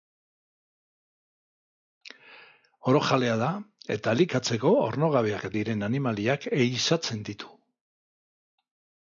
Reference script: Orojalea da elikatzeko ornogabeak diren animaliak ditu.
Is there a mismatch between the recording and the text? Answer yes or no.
yes